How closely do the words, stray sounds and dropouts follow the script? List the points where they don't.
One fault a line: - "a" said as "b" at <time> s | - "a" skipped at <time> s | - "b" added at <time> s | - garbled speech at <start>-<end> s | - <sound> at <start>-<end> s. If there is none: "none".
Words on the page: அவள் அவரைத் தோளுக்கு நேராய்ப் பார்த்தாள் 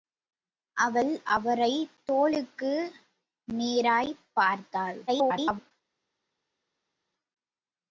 - garbled speech at 5.1-5.7 s